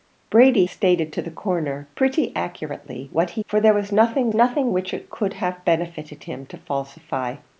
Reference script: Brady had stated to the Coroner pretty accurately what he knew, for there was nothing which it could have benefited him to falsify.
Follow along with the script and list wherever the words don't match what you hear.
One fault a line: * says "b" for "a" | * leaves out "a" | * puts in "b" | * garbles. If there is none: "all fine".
* leaves out "had"
* leaves out "knew"
* puts in "nothing"